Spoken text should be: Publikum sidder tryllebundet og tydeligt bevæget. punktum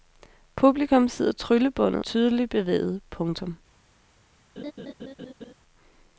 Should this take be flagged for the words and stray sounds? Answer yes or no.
yes